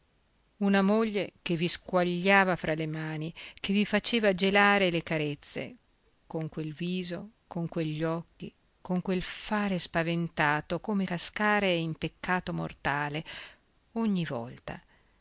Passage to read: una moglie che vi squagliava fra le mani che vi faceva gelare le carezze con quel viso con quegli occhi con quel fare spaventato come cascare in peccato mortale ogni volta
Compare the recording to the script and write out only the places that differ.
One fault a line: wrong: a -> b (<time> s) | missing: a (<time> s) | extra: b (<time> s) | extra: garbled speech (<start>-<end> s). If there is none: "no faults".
no faults